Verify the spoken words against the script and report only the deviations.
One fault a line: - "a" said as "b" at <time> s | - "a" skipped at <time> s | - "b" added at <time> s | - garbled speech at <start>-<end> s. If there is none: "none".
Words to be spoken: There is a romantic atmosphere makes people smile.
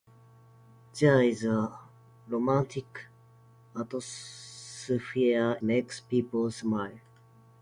none